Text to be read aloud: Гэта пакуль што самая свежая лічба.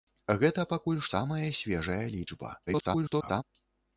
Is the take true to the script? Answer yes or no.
no